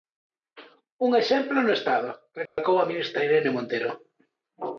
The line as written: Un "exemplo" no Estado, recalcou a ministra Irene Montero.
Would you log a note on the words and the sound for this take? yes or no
yes